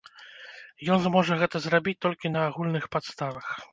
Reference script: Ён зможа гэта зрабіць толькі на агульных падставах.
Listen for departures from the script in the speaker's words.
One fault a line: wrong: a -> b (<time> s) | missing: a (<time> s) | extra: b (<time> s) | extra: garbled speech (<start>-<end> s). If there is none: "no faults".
no faults